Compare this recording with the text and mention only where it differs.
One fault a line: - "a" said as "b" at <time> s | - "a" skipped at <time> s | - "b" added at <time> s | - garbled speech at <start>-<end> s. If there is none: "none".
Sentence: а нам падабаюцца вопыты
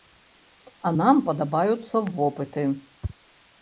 none